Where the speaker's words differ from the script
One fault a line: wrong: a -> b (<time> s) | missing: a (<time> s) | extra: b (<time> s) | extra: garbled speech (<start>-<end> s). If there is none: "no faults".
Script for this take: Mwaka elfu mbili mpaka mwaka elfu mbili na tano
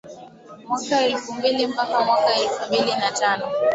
no faults